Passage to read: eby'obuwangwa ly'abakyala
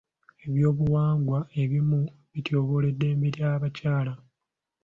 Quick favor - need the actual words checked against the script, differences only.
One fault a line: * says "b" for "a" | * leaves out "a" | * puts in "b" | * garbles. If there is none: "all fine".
* puts in "ebimu bityoboola eddembe"